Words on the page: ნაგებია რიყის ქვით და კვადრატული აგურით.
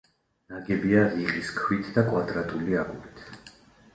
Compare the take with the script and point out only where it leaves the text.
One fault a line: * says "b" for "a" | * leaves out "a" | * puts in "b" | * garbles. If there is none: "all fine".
all fine